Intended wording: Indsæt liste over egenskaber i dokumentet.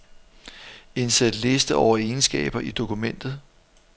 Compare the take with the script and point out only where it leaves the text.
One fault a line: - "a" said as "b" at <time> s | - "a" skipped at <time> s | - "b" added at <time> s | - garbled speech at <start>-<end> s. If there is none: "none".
none